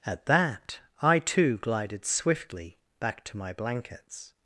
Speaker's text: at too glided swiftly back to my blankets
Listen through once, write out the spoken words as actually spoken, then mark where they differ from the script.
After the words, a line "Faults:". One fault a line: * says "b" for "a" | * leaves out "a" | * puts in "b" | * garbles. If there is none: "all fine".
at that i too glided swiftly back to my blankets
Faults:
* puts in "that i"